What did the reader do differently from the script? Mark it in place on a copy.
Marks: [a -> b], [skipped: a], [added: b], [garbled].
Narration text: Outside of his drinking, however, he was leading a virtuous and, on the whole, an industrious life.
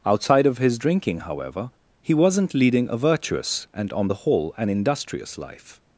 Outside of his drinking, however, he [was -> wasn't] leading a virtuous and, on the whole, an industrious life.